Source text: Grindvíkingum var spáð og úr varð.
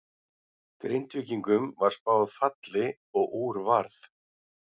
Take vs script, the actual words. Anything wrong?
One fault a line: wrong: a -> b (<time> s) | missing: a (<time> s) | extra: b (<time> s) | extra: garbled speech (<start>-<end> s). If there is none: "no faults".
extra: falli (2.4 s)